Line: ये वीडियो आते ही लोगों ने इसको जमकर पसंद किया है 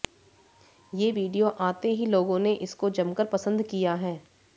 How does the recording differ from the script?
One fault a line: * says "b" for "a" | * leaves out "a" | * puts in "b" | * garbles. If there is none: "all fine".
all fine